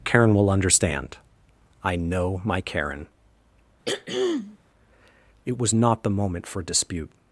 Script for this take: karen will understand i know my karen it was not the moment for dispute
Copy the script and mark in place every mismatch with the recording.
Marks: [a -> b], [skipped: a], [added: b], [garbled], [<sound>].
karen will understand i know my karen [throat clearing] it was not the moment for dispute